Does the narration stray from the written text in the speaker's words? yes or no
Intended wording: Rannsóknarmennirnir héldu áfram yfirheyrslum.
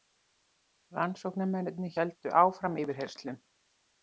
no